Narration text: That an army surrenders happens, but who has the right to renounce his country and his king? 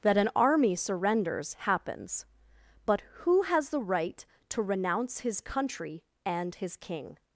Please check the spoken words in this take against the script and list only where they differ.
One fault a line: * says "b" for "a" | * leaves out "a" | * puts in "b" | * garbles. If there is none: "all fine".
all fine